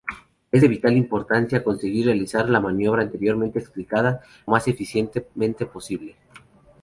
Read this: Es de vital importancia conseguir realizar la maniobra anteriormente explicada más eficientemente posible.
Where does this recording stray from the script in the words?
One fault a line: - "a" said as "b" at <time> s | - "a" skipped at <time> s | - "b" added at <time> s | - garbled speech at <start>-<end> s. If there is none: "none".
none